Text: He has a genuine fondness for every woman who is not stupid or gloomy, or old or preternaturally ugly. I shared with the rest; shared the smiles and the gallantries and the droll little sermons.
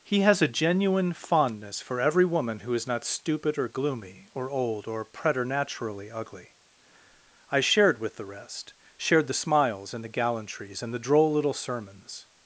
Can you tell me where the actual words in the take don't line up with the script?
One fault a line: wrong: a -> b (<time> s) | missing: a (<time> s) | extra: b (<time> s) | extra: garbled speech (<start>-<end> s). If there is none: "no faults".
no faults